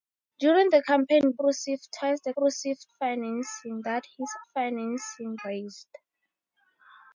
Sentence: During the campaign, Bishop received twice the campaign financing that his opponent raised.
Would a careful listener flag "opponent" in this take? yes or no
yes